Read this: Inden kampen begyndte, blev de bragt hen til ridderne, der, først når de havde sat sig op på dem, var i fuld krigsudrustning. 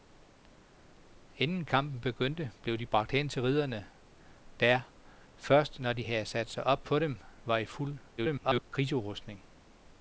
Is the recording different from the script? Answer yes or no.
yes